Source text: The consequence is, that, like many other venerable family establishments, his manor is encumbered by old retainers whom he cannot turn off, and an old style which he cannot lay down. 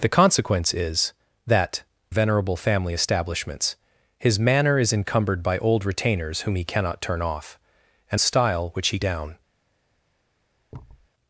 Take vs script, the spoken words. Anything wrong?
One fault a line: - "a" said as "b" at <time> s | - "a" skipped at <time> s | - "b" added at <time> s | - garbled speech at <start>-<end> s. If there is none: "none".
- "like many other" skipped at 1.8 s
- "an old" skipped at 8.2 s
- "cannot lay" skipped at 9.0 s